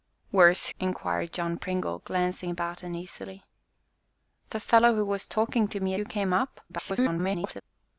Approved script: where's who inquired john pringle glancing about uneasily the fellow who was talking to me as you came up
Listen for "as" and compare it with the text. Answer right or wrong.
wrong